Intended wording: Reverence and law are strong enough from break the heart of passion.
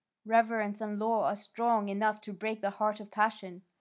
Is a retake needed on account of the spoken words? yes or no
yes